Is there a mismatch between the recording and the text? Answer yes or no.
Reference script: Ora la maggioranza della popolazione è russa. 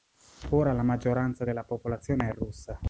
no